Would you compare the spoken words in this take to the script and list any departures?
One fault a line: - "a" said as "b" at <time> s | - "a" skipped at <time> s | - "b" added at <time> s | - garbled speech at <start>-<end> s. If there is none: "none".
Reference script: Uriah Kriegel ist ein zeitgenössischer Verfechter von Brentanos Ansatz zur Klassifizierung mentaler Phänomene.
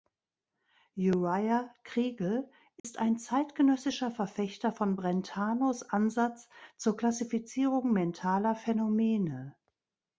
none